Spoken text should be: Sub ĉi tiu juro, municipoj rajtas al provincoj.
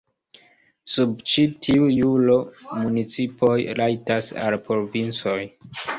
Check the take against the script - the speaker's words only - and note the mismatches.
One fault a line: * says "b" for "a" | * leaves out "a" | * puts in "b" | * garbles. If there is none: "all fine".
all fine